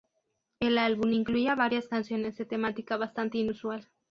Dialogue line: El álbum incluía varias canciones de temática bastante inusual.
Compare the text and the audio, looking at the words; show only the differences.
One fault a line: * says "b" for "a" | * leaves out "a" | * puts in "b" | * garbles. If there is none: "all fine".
all fine